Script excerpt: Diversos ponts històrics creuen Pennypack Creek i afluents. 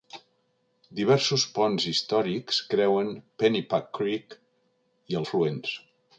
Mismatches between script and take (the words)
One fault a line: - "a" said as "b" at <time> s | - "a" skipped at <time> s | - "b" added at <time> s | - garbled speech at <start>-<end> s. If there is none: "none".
none